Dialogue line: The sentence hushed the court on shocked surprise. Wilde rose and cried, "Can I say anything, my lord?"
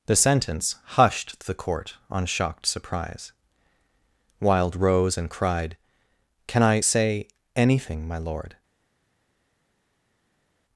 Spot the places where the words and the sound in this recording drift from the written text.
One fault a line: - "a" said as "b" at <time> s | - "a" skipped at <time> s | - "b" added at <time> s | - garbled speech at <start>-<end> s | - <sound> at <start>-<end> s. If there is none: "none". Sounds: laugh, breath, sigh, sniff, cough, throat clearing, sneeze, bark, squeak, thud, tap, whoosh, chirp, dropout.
none